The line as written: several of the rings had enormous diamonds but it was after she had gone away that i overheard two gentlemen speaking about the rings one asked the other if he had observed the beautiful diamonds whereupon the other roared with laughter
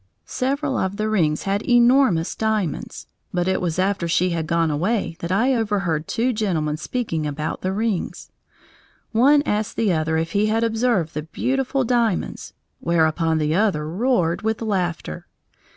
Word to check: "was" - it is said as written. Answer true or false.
true